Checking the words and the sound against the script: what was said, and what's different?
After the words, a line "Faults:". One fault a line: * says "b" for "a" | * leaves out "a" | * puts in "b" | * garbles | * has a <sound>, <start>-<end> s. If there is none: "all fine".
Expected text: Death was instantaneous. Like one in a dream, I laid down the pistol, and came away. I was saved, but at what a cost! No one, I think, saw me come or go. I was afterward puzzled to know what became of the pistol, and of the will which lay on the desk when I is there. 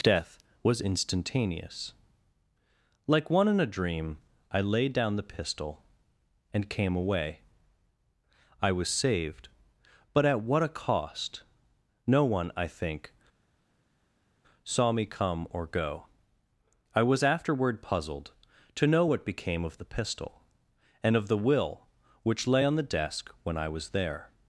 Death was instantaneous. Like one in a dream, I laid down the pistol, and came away. I was saved, but at what a cost! No one, I think, saw me come or go. I was afterward puzzled to know what became of the pistol, and of the will which lay on the desk when I was there.
Faults:
* says "was" for "is"